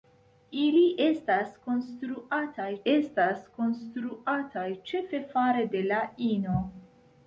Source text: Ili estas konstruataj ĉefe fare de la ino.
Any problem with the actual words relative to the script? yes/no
yes